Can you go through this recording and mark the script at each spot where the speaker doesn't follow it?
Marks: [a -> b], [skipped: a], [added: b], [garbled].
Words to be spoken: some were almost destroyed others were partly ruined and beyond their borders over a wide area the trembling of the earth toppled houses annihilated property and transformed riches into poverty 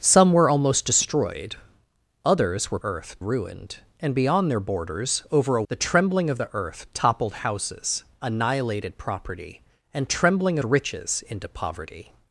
some were almost destroyed others were [partly -> earth] ruined and beyond their borders over a [skipped: wide area] the trembling of the earth toppled houses annihilated property and [transformed -> trembling] riches into poverty